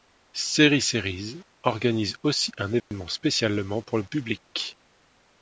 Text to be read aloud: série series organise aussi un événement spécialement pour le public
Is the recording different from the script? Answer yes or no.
no